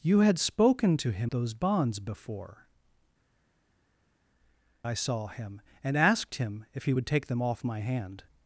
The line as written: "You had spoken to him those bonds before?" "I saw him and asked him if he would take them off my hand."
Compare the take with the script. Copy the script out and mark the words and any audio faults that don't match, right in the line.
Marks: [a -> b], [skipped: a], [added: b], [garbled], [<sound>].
"You had spoken to him those bonds before?" "I saw him and asked him if he would take them off my hand."